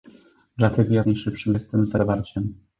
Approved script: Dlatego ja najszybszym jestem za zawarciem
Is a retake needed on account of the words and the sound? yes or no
no